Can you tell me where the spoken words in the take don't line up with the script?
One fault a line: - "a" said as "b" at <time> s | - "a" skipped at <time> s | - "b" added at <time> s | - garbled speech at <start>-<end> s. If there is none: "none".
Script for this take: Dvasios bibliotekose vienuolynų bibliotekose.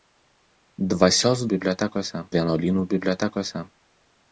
none